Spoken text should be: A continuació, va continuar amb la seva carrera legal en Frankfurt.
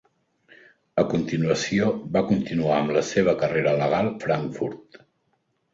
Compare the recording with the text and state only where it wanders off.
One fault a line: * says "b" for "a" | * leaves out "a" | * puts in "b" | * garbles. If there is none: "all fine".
* leaves out "en"